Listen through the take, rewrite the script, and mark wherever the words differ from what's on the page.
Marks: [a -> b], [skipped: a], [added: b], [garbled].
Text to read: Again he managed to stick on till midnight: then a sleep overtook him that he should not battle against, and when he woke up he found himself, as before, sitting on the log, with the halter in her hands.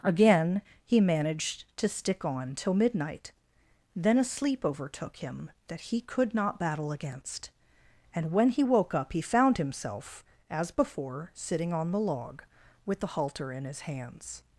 Again he managed to stick on till midnight: then a sleep overtook him that he [should -> could] not battle against, and when he woke up he found himself, as before, sitting on the log, with the halter in [her -> his] hands.